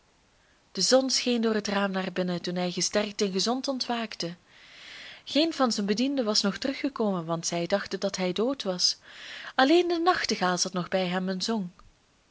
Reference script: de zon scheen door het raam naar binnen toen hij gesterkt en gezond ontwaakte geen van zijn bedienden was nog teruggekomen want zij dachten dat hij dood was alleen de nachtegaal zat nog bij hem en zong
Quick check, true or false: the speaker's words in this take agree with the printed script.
true